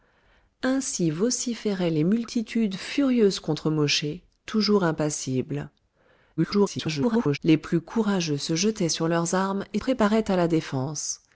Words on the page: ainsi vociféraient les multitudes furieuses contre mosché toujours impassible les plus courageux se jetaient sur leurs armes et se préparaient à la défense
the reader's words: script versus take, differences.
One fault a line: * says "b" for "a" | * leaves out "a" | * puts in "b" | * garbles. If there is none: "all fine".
* garbles
* leaves out "se"